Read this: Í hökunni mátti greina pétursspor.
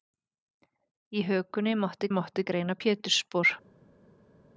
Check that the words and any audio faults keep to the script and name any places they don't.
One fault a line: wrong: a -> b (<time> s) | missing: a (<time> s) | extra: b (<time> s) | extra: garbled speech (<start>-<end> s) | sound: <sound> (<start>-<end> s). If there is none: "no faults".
extra: mátti (2.2 s)